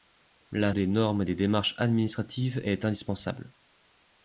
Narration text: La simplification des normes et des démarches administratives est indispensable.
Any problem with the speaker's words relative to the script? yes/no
yes